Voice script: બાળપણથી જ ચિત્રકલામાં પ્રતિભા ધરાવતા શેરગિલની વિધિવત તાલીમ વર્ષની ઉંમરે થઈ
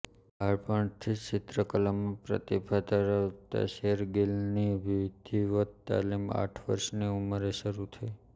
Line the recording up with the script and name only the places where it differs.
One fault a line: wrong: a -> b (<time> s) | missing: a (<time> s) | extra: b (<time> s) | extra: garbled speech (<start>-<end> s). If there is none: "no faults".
extra: આઠ (6.4 s)
extra: શરૂ (7.6 s)